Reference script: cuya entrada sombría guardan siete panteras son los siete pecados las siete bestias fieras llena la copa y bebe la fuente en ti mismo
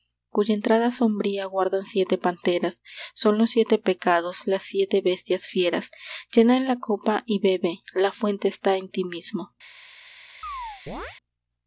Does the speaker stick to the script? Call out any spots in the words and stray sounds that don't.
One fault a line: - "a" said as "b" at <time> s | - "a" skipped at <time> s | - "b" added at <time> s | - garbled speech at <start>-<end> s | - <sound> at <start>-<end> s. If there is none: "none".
- "está" added at 8.5 s
- chirp at 10.4-11.2 s